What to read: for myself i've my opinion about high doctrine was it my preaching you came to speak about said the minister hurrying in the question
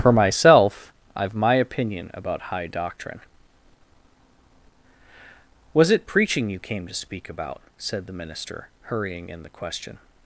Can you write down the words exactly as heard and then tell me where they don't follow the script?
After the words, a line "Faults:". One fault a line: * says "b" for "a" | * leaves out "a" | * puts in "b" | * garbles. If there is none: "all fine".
for myself i've my opinion about high doctrine was it preaching you came to speak about said the minister hurrying in the question
Faults:
* leaves out "my"